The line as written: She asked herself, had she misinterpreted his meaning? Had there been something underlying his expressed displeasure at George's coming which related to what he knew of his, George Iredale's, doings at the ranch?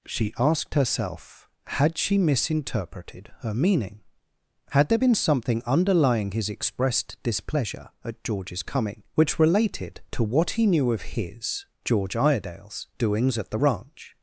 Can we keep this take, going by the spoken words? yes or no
no